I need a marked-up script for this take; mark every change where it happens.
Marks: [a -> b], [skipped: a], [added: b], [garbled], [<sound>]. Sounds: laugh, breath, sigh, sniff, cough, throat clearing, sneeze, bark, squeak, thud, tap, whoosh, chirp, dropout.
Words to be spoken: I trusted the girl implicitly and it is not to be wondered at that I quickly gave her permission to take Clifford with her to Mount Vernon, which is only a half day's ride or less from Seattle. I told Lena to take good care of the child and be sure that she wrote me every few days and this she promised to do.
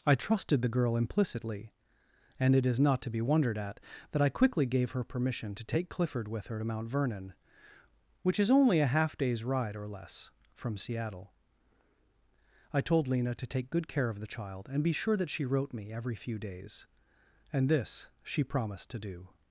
I trusted the girl implicitly and it is not to be wondered at that I quickly gave her permission to take Clifford with her to Mount Vernon, which is only a half day's ride or less from Seattle. I told Lena to take good care of the child and be sure that she wrote me every few days and this she promised to do.